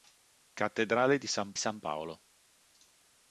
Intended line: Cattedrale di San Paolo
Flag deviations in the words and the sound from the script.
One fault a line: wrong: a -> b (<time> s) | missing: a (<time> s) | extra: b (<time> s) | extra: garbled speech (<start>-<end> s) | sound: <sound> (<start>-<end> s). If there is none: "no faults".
extra: San (1.6 s)